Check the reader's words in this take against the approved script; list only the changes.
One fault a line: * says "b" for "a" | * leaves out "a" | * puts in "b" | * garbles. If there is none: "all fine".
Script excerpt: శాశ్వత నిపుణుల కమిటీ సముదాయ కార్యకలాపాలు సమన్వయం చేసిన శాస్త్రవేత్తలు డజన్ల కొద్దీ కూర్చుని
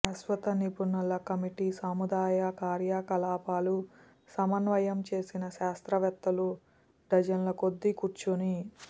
all fine